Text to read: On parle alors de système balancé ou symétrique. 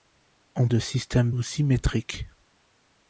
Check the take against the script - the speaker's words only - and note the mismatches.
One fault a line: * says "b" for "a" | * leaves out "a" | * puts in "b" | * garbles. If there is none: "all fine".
* leaves out "parle alors"
* leaves out "balancé"